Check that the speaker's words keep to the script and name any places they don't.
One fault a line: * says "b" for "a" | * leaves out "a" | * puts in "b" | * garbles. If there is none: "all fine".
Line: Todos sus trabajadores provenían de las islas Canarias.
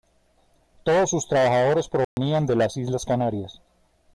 all fine